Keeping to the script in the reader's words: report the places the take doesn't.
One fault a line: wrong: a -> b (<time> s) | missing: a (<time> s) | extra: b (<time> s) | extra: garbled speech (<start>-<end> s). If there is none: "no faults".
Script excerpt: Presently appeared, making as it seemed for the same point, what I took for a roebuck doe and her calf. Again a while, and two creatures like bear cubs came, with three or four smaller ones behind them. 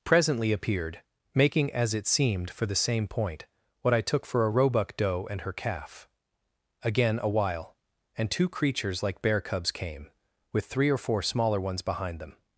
no faults